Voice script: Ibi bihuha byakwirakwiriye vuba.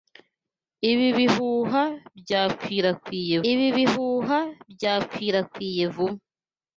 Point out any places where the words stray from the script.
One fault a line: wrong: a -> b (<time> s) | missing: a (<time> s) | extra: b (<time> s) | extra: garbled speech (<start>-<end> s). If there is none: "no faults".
extra: ibi bihuha byakwirakwiriye (3.5 s)